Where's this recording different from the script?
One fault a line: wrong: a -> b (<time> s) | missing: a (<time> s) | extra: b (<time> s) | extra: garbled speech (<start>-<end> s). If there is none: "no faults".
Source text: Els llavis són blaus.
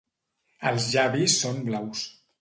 no faults